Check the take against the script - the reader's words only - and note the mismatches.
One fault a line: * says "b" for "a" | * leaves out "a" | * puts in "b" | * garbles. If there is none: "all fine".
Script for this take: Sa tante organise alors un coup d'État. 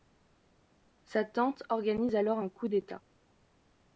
all fine